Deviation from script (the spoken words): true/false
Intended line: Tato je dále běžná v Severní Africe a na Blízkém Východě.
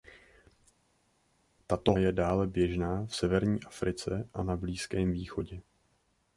false